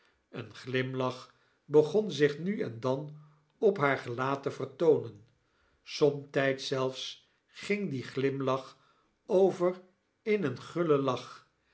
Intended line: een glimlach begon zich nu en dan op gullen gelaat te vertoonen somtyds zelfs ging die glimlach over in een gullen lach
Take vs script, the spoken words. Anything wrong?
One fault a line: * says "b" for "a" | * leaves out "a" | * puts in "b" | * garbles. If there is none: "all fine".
* says "haar" for "gullen"